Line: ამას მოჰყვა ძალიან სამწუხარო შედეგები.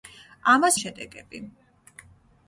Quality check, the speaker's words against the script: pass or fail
fail